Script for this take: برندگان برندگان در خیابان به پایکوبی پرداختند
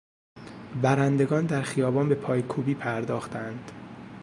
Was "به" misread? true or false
false